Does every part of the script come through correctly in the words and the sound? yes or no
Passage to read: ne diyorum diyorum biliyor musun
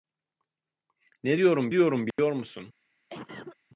no